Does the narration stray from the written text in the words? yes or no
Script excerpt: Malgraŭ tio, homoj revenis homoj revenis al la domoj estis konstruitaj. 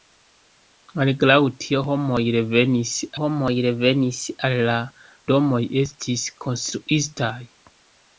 no